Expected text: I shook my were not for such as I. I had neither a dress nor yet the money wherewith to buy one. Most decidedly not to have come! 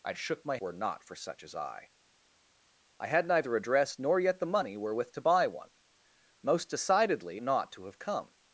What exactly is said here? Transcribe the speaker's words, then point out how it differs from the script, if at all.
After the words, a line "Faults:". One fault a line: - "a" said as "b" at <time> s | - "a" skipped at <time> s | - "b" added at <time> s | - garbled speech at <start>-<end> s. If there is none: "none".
I shook my were not for such as I. I had neither a dress nor yet the money wherewith to buy one. Most decidedly not to have come!
Faults:
none